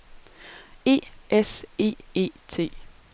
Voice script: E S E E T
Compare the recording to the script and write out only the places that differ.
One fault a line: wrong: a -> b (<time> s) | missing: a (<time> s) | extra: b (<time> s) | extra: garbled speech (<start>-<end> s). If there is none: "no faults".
no faults